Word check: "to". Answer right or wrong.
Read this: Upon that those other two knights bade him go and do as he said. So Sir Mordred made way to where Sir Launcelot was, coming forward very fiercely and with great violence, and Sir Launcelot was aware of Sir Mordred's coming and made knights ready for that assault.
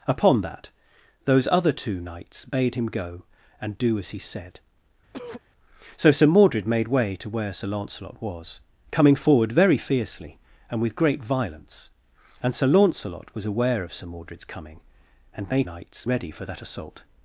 right